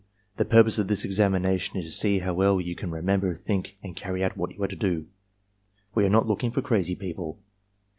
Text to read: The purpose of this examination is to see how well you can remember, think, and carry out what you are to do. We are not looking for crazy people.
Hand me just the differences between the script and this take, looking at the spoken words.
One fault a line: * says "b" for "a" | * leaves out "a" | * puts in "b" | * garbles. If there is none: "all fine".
all fine